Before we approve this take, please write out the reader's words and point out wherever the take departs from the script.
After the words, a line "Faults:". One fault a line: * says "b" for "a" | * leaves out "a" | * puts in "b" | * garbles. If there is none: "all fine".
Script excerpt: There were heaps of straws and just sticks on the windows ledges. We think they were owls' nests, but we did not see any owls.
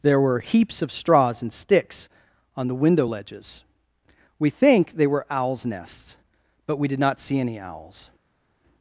There were heaps of straws and sticks on the window ledges. We think they were owls' nests, but we did not see any owls.
Faults:
* leaves out "just"
* says "window" for "windows"